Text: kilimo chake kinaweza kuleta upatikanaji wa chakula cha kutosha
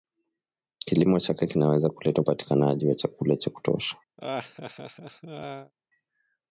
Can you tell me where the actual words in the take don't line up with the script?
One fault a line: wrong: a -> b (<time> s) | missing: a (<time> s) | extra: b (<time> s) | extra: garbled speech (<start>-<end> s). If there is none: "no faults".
no faults